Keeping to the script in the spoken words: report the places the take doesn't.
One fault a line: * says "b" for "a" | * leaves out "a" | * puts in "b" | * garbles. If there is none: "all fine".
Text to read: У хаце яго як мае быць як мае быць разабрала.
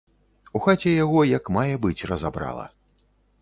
* leaves out "як мае быць"